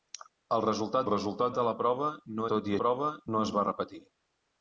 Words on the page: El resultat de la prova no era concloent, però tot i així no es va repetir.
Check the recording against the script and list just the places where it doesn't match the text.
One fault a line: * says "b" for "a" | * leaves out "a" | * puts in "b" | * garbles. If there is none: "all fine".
* puts in "resultat"
* leaves out "era concloent però"
* says "prova" for "així"